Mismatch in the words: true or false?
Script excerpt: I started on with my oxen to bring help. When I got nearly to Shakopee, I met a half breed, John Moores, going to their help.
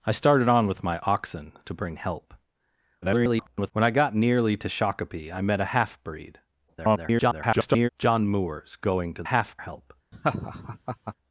true